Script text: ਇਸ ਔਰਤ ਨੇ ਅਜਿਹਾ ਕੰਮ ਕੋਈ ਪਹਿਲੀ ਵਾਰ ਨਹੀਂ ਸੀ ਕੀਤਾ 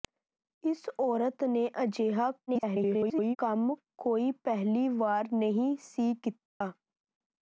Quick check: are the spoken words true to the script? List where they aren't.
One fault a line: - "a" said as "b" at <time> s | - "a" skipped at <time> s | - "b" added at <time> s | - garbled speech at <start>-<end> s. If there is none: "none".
- garbled speech at 2.5-3.4 s